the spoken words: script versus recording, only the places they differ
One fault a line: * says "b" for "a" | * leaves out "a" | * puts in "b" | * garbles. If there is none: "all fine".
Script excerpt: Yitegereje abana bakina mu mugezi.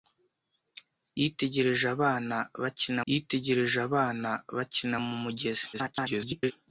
* puts in "yitegereje abana bakina"
* garbles